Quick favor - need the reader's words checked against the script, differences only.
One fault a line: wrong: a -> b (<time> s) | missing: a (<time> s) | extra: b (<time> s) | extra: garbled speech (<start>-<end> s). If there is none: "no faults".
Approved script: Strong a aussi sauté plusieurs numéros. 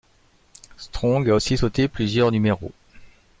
no faults